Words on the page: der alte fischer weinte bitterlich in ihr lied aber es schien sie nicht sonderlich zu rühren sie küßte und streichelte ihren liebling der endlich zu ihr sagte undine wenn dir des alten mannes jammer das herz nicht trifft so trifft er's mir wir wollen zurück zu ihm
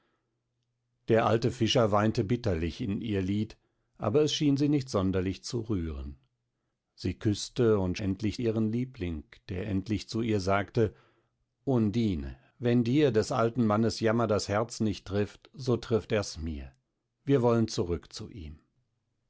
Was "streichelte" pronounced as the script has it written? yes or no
no